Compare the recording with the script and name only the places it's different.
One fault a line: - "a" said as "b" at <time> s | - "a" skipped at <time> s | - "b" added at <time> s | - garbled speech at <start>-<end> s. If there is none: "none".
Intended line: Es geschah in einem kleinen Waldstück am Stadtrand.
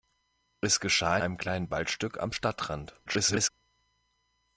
- "in" skipped at 1.2 s
- garbled speech at 3.1-3.5 s